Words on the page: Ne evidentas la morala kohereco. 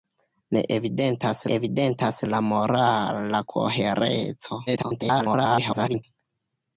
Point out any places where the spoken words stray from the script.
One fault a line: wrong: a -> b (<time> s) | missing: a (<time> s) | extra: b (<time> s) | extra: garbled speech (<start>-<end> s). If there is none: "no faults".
extra: evidentas (1.5 s)
extra: garbled speech (4.7-6.0 s)